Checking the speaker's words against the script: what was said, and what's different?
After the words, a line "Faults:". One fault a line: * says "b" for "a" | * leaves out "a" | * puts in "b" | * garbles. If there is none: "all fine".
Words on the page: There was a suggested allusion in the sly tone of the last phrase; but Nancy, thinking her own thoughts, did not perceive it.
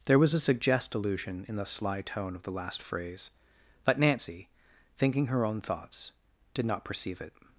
There was a suggest allusion in the sly tone of the last phrase; but Nancy, thinking her own thoughts, did not perceive it.
Faults:
* says "suggest" for "suggested"